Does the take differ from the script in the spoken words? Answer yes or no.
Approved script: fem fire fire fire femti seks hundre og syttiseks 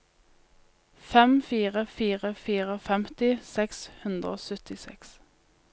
no